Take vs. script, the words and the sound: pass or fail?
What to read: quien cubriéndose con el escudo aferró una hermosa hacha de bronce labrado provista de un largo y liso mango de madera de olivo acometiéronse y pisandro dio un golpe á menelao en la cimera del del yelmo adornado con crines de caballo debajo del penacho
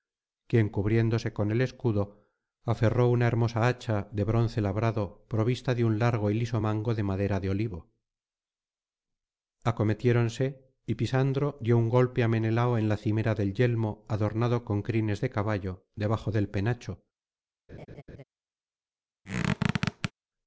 fail